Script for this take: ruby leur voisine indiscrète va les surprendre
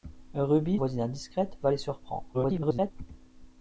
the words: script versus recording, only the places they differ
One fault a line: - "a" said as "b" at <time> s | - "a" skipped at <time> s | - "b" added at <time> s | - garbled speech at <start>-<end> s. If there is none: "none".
- "leur" skipped at 0.8 s
- garbled speech at 2.3-2.9 s